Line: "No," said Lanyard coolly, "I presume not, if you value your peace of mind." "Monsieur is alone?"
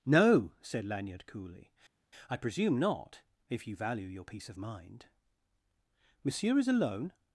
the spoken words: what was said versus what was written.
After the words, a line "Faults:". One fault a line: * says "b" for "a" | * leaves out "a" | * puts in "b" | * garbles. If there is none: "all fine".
"No," said Lanyard coolly, "I presume not, if you value your peace of mind." "Monsieur is alone?"
Faults:
all fine